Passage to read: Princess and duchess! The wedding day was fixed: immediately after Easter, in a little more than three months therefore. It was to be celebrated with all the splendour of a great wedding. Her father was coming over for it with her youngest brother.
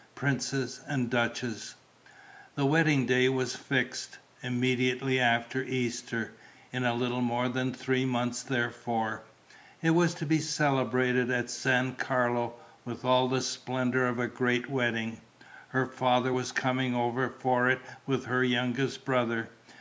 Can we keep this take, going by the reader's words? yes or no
no